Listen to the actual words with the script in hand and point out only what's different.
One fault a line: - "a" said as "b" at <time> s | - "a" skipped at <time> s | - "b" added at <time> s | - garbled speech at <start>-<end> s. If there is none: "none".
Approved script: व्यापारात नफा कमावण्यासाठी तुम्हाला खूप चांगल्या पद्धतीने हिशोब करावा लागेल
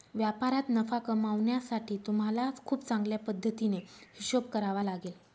none